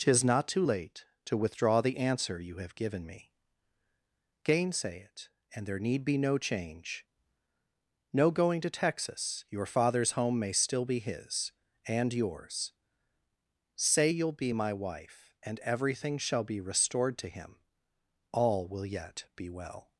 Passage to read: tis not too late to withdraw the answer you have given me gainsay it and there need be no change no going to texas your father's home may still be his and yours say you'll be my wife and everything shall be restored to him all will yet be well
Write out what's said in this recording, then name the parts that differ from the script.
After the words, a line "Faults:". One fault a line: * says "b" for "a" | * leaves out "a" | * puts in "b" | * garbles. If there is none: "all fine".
tis not too late to withdraw the answer you have given me gainsay it and there need be no change no going to texas your father's home may still be his and yours say you'll be my wife and everything shall be restored to him all will yet be well
Faults:
all fine